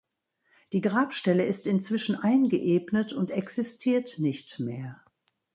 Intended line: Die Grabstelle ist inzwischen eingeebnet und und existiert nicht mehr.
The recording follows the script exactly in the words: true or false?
false